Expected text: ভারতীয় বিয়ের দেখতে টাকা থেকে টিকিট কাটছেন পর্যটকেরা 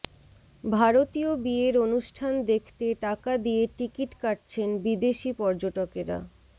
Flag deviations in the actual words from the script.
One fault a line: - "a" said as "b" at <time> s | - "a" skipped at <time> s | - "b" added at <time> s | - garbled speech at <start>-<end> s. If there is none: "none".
- "অনুষ্ঠান" added at 1.8 s
- "থেকে" said as "দিয়ে" at 3.4 s
- "বিদেশি" added at 4.8 s